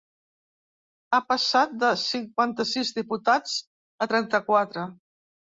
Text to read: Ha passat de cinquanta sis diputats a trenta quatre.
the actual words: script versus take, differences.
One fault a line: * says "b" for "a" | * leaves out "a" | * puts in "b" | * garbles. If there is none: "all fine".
all fine